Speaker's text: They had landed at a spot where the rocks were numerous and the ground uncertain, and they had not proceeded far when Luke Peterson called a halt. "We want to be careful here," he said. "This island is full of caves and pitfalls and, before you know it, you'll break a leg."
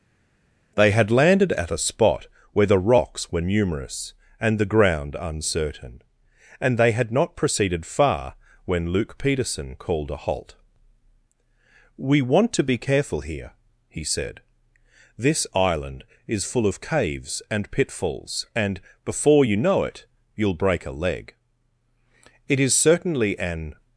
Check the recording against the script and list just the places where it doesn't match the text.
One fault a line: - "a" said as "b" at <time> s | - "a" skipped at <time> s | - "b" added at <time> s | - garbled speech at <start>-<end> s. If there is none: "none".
- "It is certainly an" added at 22.5 s